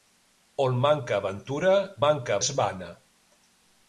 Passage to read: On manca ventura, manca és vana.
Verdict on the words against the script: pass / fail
pass